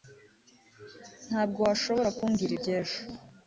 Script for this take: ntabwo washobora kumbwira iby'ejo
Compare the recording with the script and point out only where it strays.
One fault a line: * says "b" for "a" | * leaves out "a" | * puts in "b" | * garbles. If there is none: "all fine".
all fine